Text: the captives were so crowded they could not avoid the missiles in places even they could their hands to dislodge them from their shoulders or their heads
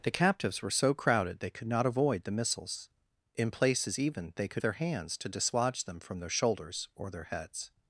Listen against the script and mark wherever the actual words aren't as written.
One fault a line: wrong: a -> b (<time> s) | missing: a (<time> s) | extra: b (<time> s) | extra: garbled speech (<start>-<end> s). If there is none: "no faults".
no faults